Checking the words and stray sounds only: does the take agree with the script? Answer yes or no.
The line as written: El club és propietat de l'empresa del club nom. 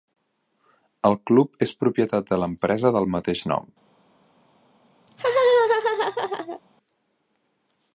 no